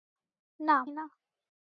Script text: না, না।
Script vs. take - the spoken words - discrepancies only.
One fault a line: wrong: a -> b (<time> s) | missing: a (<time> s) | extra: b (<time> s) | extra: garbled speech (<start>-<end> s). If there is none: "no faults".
no faults